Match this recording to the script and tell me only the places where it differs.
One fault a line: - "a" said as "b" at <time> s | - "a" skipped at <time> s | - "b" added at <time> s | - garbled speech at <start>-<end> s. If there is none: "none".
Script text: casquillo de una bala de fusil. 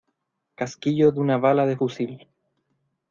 none